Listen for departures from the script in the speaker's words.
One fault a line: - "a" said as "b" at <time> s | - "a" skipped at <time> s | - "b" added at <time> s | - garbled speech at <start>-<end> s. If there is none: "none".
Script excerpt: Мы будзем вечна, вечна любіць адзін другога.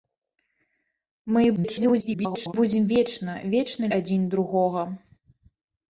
- garbled speech at 1.6-2.5 s
- "любіць" skipped at 3.9 s